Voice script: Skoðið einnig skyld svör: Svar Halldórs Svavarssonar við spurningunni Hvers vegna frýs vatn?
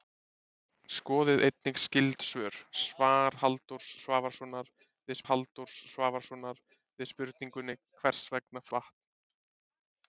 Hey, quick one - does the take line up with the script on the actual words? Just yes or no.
no